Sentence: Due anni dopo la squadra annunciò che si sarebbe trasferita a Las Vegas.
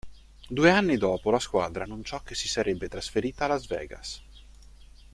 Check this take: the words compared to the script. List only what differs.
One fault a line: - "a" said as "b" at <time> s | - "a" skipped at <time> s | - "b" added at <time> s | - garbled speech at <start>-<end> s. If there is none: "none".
none